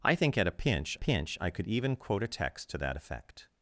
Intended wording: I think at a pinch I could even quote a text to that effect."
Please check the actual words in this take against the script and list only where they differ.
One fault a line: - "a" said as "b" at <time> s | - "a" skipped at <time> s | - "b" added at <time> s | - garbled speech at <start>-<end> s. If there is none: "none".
- "pinch" added at 1.0 s